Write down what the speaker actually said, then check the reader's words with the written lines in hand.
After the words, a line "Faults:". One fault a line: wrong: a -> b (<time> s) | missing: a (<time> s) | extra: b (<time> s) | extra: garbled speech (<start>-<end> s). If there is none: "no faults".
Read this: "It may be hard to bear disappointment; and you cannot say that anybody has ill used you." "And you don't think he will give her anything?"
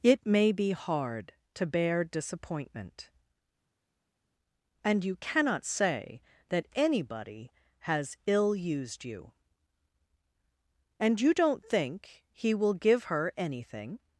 "It may be hard to bear disappointment; and you cannot say that anybody has ill used you." "And you don't think he will give her anything?"
Faults:
no faults